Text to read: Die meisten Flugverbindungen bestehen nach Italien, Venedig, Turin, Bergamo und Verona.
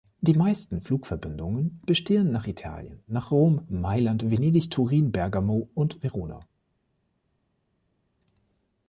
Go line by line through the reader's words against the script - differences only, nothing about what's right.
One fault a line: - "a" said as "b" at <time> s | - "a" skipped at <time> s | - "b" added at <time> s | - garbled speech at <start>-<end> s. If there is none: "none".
- "nach Rom Mailand" added at 3.1 s